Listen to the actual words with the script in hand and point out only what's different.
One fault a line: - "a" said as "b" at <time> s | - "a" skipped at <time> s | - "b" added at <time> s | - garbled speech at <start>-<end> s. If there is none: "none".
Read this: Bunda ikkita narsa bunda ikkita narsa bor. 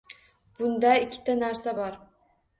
- "bunda ikkita narsa" skipped at 1.8 s